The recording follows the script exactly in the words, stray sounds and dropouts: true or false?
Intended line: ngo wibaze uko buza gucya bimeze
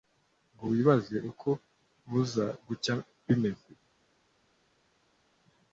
true